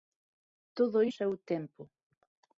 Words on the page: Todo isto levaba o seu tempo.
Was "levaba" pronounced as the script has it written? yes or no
no